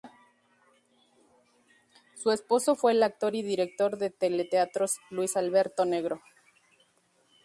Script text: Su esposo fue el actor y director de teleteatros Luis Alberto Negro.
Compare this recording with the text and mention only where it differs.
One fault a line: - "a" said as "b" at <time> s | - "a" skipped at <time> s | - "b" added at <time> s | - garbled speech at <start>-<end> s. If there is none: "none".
none